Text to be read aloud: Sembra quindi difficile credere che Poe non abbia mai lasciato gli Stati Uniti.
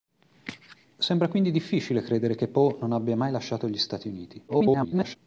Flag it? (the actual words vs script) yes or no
yes